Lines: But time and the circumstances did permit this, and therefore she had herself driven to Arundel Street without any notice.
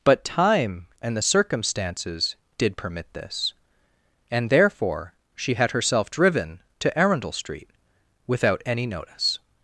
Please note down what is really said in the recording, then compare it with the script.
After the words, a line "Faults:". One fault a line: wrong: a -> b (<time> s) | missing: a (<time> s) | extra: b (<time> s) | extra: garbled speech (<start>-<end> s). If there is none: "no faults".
But time and the circumstances did permit this, and therefore she had herself driven to Arundel Street without any notice.
Faults:
no faults